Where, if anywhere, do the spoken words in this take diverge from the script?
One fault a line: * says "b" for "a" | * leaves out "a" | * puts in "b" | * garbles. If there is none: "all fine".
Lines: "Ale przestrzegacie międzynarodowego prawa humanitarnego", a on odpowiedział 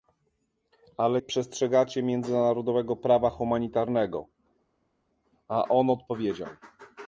all fine